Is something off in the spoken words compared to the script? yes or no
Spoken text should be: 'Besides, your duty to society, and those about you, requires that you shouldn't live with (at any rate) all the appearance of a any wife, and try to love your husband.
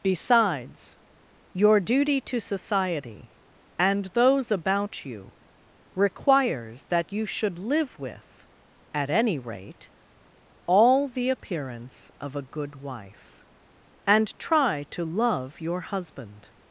yes